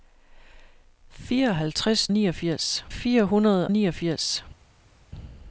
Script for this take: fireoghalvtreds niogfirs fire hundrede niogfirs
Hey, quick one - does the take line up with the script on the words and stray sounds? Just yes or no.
yes